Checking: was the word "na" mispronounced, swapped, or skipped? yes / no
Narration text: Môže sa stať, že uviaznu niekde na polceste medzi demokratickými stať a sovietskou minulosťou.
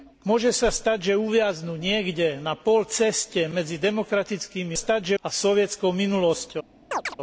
no